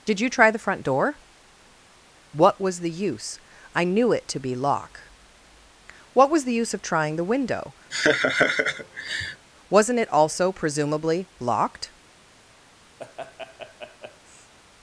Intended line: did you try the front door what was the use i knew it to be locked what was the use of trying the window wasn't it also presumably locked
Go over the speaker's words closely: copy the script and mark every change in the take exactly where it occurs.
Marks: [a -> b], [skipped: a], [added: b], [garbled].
did you try the front door what was the use i knew it to be [locked -> lock] what was the use of trying the window wasn't it also presumably locked